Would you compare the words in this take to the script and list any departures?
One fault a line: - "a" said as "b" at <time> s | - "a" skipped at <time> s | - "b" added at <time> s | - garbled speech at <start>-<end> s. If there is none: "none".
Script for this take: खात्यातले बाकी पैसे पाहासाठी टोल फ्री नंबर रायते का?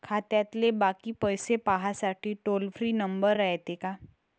none